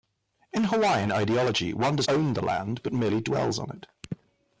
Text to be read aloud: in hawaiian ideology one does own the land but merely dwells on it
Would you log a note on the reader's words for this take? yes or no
no